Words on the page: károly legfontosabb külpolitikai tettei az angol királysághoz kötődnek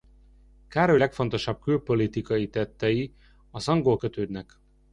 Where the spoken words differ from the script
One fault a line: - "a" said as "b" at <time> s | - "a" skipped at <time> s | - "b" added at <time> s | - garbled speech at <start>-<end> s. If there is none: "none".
- "királysághoz" skipped at 4.0 s